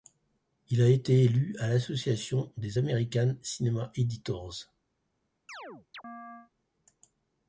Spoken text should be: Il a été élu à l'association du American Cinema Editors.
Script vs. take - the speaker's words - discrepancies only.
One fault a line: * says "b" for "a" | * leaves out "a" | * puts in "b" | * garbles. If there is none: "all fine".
* says "des" for "du"